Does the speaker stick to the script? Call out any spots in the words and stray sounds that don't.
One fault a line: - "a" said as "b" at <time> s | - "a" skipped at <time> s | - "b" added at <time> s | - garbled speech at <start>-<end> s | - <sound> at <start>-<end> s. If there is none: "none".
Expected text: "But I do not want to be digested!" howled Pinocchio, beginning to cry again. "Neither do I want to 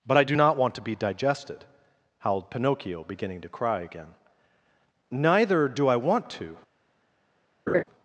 - laugh at 7.7-7.8 s